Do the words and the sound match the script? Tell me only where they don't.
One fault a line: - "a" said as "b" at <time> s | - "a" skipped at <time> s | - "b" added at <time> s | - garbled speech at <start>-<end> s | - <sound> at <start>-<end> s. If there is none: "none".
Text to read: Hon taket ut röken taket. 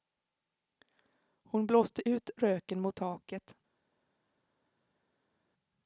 - "taket" said as "blåste" at 1.7 s
- "mot" added at 2.8 s